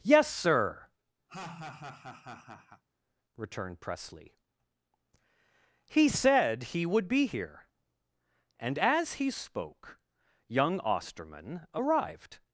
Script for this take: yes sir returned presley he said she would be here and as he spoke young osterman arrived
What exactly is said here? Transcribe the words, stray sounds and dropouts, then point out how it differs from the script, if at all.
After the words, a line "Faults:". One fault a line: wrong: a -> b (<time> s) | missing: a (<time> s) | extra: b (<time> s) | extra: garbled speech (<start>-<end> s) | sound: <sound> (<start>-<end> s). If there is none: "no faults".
yes sir returned presley he said he would be here and as he spoke young osterman arrived
Faults:
sound: laugh (1.3-2.8 s)
wrong: she -> he (6.6 s)